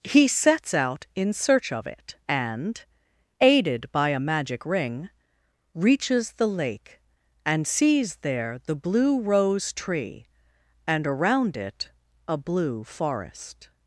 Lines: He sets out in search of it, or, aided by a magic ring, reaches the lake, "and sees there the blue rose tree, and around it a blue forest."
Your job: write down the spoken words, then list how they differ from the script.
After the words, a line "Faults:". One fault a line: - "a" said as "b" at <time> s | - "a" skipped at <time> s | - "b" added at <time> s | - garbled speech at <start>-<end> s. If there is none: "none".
He sets out in search of it, and, aided by a magic ring, reaches the lake, "and sees there the blue rose tree, and around it a blue forest."
Faults:
- "or" said as "and" at 2.3 s